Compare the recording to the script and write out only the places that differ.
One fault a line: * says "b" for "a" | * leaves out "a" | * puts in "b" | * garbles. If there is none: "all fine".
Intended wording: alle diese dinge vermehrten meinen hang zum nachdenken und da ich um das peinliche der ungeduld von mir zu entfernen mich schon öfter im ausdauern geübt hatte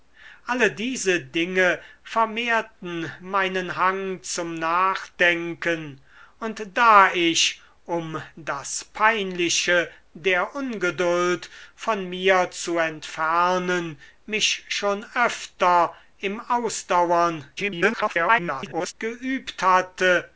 * garbles